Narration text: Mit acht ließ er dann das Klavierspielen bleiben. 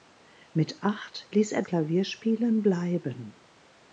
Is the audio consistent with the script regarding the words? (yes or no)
no